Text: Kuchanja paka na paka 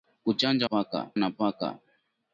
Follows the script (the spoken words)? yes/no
yes